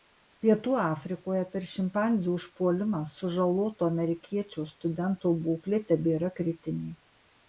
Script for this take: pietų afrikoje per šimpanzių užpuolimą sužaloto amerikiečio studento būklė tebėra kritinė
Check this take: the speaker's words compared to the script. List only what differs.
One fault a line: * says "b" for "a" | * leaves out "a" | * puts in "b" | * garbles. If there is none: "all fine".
all fine